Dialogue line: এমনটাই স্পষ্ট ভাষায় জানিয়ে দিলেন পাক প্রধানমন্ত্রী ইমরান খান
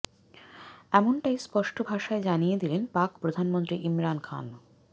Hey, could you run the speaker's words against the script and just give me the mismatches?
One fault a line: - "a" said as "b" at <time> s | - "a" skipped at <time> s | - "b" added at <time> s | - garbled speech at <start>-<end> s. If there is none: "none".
none